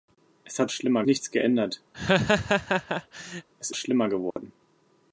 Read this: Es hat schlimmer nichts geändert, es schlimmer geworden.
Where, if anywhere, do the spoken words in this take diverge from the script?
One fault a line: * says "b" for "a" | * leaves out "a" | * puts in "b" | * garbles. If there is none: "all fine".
all fine